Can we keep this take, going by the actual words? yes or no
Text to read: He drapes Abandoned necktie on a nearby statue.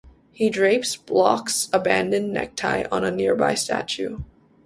no